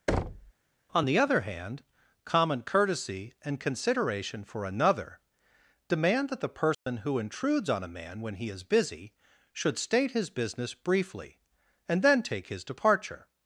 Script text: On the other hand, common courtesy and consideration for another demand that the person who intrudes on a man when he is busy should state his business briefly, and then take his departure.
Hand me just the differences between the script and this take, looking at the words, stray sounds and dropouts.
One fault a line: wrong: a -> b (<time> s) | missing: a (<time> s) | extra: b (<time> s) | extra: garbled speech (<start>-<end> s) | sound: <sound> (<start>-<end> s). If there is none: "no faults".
sound: thud (0.1-0.5 s)
sound: dropout (6.7-6.9 s)